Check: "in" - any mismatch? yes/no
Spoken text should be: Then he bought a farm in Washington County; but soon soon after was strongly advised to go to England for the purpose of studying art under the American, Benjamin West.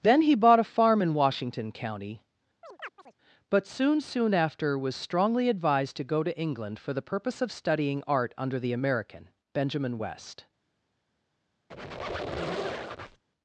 no